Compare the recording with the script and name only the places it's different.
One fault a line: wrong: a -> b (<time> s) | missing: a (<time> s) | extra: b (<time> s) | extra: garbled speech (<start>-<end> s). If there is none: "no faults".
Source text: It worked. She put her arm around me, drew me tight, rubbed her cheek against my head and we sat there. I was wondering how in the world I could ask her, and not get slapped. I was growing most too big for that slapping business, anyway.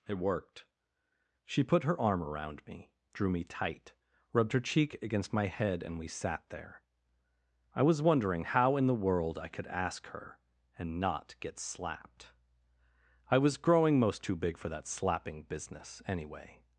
no faults